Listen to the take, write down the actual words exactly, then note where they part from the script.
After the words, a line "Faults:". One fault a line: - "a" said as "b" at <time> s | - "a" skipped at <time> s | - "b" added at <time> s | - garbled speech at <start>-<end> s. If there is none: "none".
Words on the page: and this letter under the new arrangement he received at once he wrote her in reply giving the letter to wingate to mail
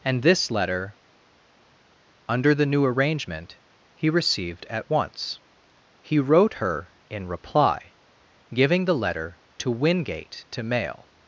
and this letter under the new arrangement he received at once he wrote her in reply giving the letter to wingate to mail
Faults:
none